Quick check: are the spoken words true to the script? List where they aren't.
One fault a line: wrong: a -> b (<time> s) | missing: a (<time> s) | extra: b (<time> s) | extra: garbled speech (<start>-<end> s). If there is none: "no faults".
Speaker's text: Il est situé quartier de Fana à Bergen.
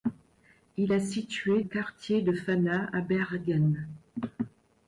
no faults